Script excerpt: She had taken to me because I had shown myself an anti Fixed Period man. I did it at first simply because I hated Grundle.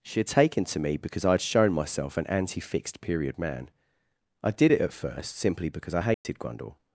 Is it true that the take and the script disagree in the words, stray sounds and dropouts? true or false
true